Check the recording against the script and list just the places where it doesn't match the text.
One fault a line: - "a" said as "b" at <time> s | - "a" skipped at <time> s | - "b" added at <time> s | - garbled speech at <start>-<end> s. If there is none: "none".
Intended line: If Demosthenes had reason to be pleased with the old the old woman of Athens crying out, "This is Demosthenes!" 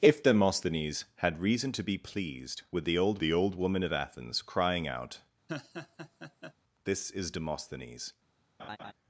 none